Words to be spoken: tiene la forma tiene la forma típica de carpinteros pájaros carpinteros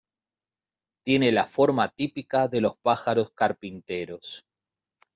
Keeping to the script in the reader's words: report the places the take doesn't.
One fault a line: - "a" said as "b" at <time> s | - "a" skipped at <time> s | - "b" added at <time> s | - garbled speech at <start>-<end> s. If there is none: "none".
- "tiene la forma" skipped at 1.9 s
- "carpinteros" said as "los" at 2.6 s